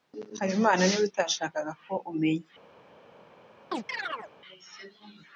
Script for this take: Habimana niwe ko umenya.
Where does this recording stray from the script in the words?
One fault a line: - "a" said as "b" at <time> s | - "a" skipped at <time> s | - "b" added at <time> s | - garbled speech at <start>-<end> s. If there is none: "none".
- "utashakaga" added at 1.1 s